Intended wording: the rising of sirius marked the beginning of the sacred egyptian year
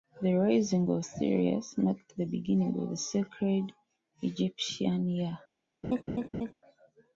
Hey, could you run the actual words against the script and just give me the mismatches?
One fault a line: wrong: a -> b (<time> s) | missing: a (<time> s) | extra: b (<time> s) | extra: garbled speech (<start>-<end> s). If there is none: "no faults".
no faults